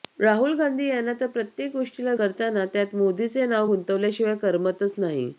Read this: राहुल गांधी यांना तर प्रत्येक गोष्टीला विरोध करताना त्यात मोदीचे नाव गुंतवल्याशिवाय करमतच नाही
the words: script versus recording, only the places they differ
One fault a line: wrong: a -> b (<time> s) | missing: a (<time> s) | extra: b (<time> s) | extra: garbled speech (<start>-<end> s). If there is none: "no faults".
missing: विरोध (2.1 s)